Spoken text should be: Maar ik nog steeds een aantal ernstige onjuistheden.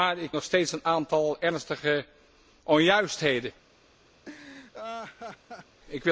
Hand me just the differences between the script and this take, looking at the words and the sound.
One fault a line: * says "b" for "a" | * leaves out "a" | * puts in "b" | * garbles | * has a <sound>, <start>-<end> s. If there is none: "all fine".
* has a laugh, 4.3-5.8 s